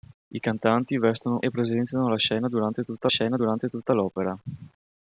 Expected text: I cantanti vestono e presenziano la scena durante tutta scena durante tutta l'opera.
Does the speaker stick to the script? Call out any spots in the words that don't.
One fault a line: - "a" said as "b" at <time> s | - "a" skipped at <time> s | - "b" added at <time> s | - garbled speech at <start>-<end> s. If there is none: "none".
none